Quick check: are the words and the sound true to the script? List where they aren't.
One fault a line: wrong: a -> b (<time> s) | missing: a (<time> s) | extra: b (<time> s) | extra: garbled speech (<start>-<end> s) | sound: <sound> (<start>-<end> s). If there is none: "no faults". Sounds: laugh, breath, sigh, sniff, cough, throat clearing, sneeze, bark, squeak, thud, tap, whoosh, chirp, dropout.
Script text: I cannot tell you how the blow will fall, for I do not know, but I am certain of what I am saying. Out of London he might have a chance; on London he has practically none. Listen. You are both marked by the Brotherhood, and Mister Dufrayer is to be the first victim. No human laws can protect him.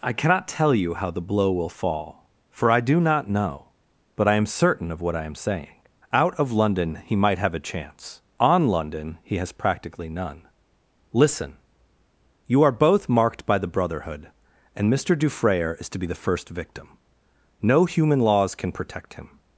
no faults